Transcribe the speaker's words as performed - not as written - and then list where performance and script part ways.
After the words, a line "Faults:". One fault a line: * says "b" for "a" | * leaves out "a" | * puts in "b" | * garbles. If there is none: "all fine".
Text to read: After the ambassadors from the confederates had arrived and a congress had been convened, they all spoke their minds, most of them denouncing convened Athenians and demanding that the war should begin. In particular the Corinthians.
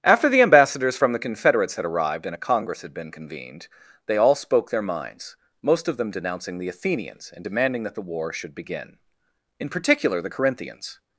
After the ambassadors from the confederates had arrived and a congress had been convened, they all spoke their minds, most of them denouncing the Athenians and demanding that the war should begin. In particular the Corinthians.
Faults:
* says "the" for "convened"